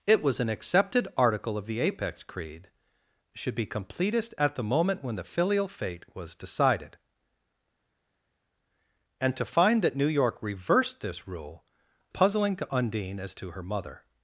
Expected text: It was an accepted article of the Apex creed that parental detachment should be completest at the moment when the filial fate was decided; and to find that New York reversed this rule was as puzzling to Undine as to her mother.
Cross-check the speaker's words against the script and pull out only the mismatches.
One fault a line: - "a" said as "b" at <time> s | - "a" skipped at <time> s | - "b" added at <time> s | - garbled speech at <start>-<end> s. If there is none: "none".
- "that parental detachment" skipped at 2.7 s
- "was as" skipped at 11.6 s